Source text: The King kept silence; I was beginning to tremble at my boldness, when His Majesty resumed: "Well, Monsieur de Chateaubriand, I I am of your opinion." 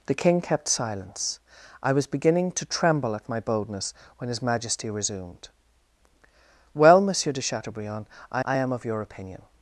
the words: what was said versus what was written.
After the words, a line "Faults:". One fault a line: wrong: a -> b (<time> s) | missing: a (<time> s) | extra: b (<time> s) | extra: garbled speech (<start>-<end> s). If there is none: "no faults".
The King kept silence; I was beginning to tremble at my boldness, when His Majesty resumed: "Well, Monsieur de Chateaubriand, I I am of your opinion."
Faults:
no faults